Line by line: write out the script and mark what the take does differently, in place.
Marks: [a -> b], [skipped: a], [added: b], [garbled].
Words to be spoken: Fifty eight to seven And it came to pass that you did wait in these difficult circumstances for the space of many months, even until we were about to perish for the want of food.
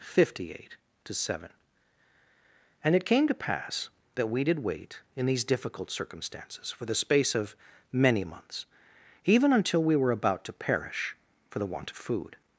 Fifty eight to seven And it came to pass that [you -> we] did wait in these difficult circumstances for the space of many months, even until we were about to perish for the want of food.